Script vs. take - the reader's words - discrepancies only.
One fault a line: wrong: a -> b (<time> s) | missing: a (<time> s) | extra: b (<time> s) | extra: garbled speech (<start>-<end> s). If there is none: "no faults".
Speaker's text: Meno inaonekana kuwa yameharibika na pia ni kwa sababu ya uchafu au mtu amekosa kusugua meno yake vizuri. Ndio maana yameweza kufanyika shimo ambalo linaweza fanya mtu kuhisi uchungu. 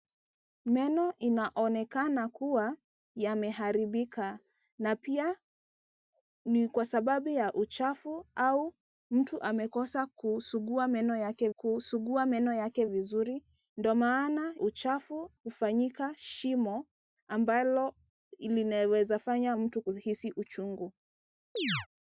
extra: kusugua meno yake (11.5 s)
wrong: yameweza -> uchafu (14.6 s)